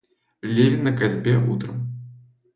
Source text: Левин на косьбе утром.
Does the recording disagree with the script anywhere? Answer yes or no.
no